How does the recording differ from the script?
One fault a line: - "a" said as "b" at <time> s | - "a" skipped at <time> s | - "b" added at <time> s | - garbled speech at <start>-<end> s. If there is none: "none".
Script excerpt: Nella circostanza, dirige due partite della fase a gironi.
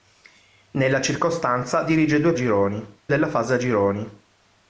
- "partite" said as "gironi" at 2.3 s